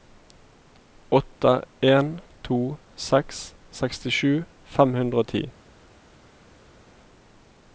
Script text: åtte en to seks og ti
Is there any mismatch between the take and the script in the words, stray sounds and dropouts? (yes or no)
yes